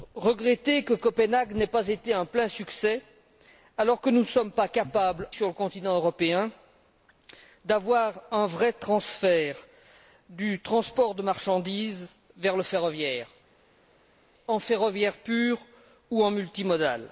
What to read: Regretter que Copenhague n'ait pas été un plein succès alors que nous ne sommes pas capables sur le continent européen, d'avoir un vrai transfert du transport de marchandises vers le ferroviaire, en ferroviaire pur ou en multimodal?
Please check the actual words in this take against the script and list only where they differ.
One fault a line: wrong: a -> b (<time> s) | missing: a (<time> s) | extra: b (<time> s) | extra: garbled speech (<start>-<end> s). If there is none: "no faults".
no faults